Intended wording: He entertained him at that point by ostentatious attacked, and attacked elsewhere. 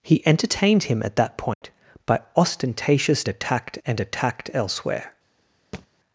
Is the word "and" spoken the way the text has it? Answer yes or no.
yes